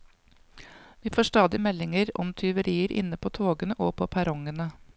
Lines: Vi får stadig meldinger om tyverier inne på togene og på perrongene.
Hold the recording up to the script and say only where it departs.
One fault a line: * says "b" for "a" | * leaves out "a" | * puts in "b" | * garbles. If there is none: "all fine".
all fine